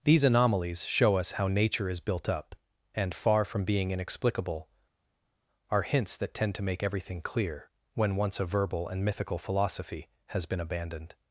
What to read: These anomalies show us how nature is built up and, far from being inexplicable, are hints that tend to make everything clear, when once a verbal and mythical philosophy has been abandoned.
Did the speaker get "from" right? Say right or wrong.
right